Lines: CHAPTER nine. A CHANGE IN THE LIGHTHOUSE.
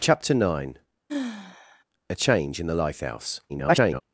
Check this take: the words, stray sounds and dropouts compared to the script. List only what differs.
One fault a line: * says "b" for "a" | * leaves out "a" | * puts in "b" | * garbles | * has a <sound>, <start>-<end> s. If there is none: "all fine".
* has a sigh, 1.1-1.8 s
* garbles